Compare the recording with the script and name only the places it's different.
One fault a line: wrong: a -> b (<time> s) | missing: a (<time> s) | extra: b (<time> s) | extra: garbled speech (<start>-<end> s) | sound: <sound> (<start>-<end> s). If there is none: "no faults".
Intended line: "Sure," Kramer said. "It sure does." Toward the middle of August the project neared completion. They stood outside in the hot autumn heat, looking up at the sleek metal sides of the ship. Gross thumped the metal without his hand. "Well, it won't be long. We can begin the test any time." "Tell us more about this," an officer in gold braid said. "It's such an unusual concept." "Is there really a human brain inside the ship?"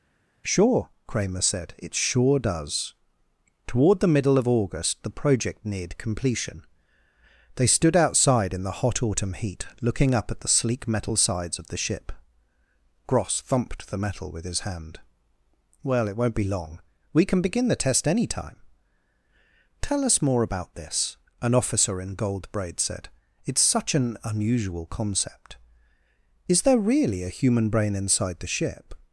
wrong: without -> with (14.3 s)